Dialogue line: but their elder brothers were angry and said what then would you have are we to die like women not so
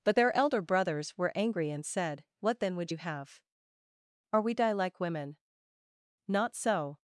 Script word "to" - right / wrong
wrong